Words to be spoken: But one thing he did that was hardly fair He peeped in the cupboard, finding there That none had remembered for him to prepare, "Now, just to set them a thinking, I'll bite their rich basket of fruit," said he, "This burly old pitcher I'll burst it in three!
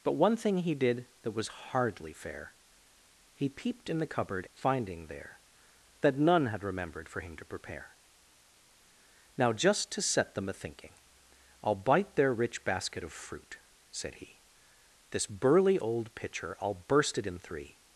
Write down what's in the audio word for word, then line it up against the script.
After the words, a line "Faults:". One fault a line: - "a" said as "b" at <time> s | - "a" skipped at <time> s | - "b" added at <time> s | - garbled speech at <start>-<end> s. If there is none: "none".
But one thing he did that was hardly fair He peeped in the cupboard, finding there That none had remembered for him to prepare, "Now, just to set them a thinking, I'll bite their rich basket of fruit," said he, "This burly old pitcher I'll burst it in three!
Faults:
none